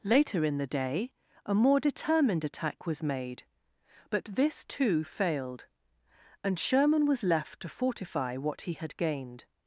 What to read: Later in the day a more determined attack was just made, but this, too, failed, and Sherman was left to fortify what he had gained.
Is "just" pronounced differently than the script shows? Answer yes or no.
yes